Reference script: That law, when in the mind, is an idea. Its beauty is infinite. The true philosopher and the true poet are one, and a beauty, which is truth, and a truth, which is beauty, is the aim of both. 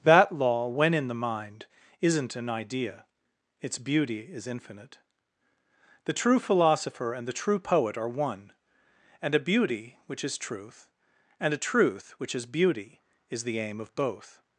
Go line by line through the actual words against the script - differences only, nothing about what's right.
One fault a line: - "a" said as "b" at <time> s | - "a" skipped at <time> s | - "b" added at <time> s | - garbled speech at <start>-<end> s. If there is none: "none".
- "is" said as "isn't" at 2.0 s